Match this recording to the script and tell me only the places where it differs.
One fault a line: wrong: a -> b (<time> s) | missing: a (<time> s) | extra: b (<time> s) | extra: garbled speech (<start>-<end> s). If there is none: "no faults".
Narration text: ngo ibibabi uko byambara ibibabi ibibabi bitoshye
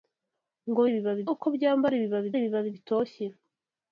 no faults